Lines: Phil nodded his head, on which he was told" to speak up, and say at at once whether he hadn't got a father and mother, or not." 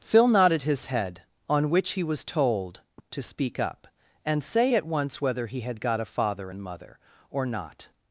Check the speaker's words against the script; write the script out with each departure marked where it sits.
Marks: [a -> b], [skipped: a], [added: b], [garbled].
Phil nodded his head, on which he was told" to speak up, and say at [skipped: at] once whether he [hadn't -> had] got a father and mother, or not."